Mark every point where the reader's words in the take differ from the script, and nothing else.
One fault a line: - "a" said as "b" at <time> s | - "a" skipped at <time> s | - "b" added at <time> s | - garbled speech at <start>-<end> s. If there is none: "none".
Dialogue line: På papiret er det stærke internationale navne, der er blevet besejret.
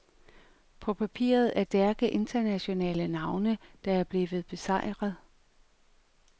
- "det" skipped at 1.6 s